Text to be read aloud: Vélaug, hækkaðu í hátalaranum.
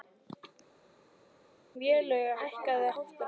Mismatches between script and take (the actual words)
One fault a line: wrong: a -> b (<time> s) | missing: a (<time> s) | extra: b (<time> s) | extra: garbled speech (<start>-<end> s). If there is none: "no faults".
no faults